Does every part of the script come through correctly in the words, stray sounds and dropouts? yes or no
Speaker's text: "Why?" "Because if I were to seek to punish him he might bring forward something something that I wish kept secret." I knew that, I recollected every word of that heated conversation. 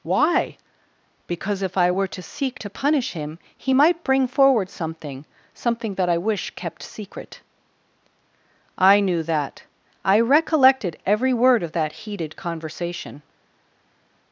yes